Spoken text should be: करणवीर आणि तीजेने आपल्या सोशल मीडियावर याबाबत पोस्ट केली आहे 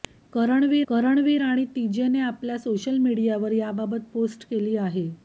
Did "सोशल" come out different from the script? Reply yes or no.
no